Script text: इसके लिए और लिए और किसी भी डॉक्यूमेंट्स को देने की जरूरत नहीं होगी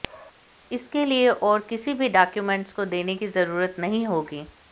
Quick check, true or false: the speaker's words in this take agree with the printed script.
false